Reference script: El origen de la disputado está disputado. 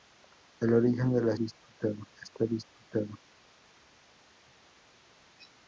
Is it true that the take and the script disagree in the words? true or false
false